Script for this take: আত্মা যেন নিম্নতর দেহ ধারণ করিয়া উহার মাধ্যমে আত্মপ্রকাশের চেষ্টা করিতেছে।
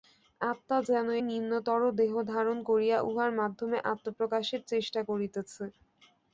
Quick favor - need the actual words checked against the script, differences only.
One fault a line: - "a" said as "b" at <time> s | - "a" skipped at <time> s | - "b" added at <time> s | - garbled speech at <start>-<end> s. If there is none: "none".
none